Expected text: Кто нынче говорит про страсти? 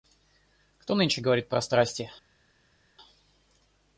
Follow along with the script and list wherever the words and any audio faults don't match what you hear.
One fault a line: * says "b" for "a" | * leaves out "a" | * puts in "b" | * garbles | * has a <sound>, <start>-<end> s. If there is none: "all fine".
all fine